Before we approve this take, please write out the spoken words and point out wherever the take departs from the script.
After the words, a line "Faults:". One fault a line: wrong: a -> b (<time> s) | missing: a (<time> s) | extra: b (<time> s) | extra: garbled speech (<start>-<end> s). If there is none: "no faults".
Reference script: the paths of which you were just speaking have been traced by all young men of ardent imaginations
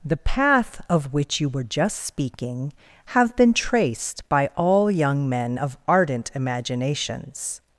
the path of which you were just speaking have been traced by all young men of ardent imaginations
Faults:
wrong: paths -> path (0.2 s)